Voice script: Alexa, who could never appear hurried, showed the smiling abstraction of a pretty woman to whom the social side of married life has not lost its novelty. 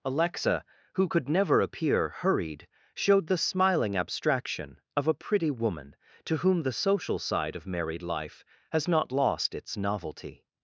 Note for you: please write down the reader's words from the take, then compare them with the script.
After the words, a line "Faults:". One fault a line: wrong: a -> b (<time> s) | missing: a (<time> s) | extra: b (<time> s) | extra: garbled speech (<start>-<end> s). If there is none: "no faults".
Alexa, who could never appear hurried, showed the smiling abstraction of a pretty woman to whom the social side of married life has not lost its novelty.
Faults:
no faults